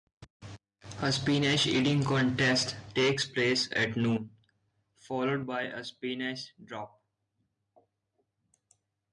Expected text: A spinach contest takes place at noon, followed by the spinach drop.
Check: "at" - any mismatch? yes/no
no